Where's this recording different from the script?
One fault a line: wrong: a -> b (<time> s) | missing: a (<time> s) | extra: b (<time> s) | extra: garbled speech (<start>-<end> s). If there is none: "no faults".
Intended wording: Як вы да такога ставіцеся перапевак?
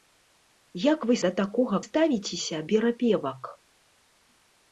no faults